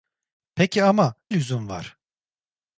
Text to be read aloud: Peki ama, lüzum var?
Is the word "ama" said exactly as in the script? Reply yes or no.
yes